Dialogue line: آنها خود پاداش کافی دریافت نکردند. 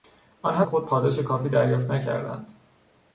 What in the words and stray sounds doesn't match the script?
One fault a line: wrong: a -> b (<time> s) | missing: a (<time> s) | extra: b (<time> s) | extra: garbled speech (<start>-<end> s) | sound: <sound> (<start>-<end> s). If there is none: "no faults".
no faults